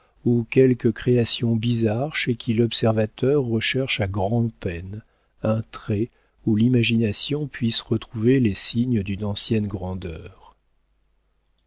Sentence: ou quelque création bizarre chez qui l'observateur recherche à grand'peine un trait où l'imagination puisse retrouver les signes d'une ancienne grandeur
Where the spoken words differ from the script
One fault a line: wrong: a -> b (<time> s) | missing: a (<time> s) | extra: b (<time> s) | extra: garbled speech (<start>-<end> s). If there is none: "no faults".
no faults